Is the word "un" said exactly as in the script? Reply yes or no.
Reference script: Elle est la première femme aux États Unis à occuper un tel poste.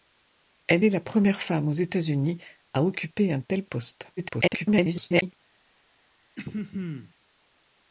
yes